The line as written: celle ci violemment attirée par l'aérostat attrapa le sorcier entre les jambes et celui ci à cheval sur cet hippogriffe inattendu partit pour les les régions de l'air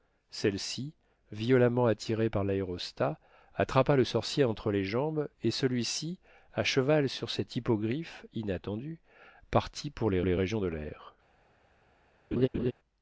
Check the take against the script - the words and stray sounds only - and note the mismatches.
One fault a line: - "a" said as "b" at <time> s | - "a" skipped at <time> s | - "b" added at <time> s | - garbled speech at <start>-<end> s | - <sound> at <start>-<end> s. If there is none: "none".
- laugh at 12.3-12.7 s